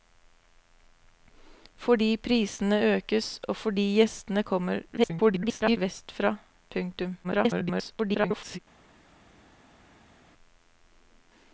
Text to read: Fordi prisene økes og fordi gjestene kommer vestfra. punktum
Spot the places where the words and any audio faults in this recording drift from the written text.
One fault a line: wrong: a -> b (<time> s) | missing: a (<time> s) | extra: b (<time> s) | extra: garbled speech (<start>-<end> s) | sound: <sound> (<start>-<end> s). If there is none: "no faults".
extra: garbled speech (5.0-5.8 s)
extra: garbled speech (7.2-8.6 s)